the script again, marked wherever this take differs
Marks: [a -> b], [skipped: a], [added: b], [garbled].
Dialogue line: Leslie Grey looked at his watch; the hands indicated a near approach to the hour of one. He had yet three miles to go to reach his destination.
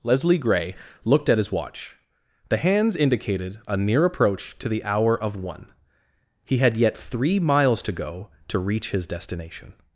Leslie Grey looked at his watch; the hands indicated a near approach to the hour of one. He had yet three miles to go to reach his destination.